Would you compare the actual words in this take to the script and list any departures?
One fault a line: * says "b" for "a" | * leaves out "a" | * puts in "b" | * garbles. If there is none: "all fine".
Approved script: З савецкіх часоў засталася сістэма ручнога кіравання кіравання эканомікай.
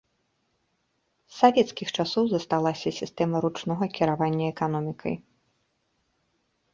* leaves out "кіравання"